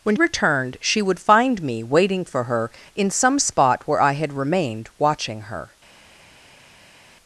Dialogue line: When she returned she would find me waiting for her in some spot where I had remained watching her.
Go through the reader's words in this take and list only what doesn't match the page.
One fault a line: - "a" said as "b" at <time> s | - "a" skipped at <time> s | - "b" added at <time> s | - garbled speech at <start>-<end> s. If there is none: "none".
- "she" skipped at 0.1 s